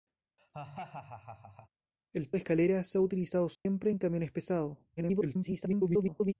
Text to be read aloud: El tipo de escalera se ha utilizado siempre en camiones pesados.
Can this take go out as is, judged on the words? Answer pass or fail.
fail